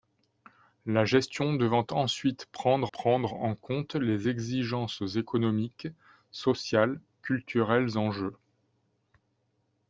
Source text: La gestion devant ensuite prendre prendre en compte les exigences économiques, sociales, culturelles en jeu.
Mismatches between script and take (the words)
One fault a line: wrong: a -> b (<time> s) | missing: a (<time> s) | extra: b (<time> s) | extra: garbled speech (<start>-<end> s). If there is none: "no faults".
no faults